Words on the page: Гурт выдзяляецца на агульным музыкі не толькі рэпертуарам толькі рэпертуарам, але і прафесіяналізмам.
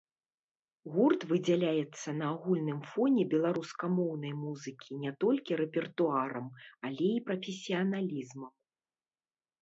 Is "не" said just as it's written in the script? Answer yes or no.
yes